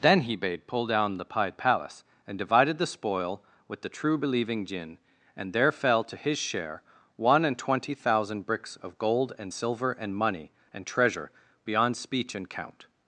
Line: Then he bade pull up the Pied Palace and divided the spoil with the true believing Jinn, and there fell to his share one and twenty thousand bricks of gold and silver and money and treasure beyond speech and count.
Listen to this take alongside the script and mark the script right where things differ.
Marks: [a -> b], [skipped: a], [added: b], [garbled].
Then he bade pull [up -> down] the Pied Palace and divided the spoil with the true believing Jinn, and there fell to his share one and twenty thousand bricks of gold and silver and money and treasure beyond speech and count.